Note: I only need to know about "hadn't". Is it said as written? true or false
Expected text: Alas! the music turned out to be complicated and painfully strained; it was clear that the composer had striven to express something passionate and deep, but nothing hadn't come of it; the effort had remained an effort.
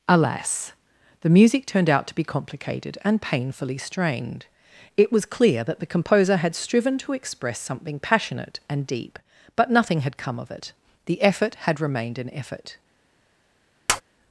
false